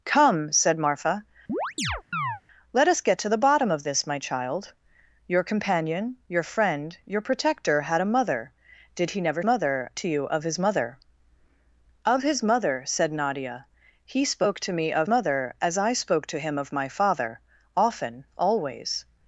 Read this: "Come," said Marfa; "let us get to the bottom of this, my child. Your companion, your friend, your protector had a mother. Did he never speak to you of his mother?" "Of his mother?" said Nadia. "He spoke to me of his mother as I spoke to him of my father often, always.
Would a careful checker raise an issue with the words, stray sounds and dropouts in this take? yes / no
yes